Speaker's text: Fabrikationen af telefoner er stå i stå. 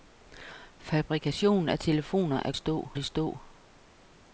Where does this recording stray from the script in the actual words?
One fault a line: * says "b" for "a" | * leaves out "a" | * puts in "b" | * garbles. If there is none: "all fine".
all fine